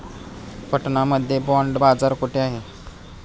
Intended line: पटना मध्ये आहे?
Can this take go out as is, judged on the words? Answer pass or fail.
fail